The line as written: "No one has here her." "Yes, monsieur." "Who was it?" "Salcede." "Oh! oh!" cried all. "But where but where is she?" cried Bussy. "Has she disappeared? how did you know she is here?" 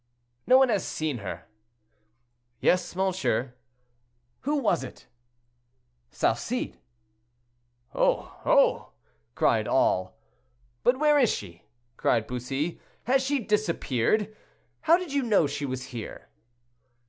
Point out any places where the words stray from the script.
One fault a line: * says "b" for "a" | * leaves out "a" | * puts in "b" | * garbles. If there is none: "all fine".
* says "seen" for "here"
* leaves out "but where"
* says "was" for "is"